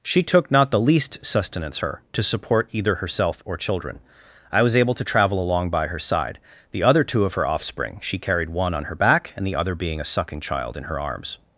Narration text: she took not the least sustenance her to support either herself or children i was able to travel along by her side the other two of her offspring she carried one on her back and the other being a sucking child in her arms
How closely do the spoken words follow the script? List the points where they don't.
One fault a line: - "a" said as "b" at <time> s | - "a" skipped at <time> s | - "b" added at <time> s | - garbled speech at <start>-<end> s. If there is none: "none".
none